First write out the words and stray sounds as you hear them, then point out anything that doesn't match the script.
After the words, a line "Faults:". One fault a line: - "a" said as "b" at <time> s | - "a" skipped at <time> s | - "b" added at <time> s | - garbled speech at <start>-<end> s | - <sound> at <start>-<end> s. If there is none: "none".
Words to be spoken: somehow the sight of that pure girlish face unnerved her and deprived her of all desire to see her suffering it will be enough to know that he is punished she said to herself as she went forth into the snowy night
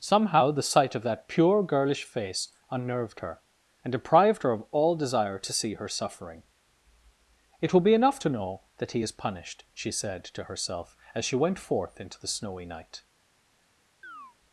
somehow the sight of that pure girlish face unnerved her and deprived her of all desire to see her suffering it will be enough to know that he is punished she said to herself as she went forth into the snowy night
Faults:
- chirp at 14.0-14.4 s